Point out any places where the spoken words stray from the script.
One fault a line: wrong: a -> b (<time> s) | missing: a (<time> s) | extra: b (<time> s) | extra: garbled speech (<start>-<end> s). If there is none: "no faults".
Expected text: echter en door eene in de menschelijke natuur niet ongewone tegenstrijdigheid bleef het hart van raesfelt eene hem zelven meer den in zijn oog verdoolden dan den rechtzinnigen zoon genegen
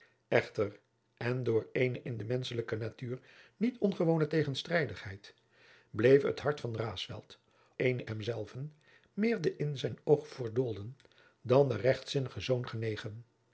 no faults